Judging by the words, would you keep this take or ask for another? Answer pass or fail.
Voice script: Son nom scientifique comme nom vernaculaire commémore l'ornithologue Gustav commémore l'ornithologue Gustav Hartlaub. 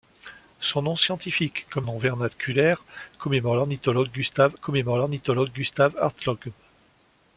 pass